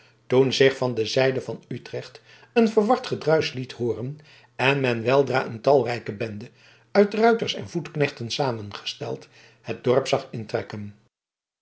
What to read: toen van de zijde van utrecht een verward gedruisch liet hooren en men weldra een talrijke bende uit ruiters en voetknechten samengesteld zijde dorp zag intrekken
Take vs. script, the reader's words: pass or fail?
fail